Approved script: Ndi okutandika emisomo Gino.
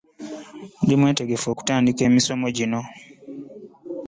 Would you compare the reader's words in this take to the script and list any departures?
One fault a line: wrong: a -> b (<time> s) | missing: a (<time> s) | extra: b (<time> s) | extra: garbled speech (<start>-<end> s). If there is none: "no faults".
extra: mwetegefu (1.0 s)